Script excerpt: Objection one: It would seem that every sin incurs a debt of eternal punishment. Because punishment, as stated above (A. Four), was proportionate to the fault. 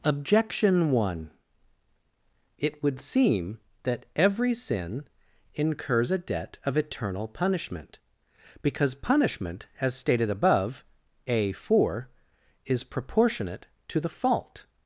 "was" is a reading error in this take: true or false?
true